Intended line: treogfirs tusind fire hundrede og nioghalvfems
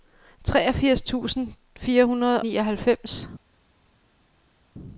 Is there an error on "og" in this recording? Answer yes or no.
yes